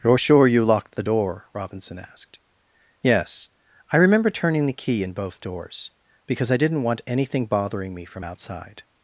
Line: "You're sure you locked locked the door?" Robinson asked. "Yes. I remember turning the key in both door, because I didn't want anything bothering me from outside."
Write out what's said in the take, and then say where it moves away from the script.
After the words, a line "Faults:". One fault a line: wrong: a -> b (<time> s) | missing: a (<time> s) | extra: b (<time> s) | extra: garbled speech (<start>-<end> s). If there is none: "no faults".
"You're sure you locked the door?" Robinson asked. "Yes. I remember turning the key in both doors, because I didn't want anything bothering me from outside."
Faults:
missing: locked (0.9 s)
wrong: door -> doors (5.4 s)